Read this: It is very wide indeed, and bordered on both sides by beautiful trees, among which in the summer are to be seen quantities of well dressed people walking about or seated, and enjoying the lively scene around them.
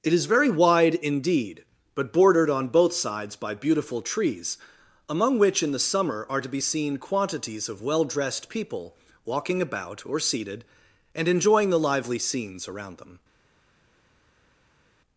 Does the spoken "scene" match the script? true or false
false